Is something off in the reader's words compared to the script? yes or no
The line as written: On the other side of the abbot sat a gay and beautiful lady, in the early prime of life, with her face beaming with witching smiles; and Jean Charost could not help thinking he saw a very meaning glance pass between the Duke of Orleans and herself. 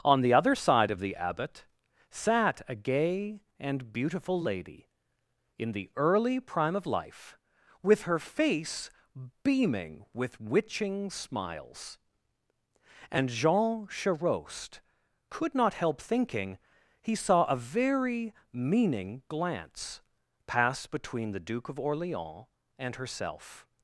no